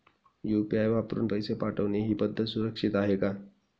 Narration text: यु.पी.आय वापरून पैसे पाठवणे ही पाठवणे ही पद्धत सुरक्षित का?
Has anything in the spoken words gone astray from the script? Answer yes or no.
yes